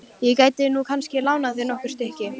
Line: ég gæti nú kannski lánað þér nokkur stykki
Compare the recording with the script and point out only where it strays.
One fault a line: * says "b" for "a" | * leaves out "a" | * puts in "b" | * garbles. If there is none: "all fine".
all fine